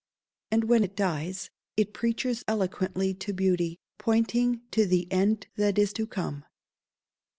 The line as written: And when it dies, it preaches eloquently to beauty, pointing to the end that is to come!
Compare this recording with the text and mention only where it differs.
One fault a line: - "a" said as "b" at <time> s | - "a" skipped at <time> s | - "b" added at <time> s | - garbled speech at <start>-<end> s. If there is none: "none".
none